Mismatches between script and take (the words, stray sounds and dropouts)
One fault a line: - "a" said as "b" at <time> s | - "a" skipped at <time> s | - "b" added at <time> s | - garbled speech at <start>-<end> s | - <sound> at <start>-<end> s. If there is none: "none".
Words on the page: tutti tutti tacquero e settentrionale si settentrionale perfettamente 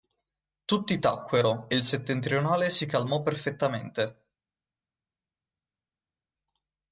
- "tutti" skipped at 1.0 s
- "il" added at 1.7 s
- "settentrionale" said as "calmò" at 2.9 s